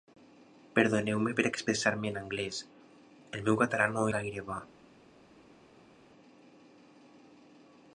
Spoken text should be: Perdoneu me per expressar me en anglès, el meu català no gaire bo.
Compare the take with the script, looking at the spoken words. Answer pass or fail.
pass